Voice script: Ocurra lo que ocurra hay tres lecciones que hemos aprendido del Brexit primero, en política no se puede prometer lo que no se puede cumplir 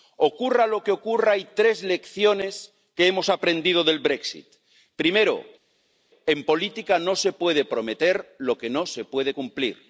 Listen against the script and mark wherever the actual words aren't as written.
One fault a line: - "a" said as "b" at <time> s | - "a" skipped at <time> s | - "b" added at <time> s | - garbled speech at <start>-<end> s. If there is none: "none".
none